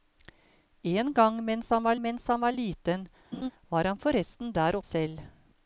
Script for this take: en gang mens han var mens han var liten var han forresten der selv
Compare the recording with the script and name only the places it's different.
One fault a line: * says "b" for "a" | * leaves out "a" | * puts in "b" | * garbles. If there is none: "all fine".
all fine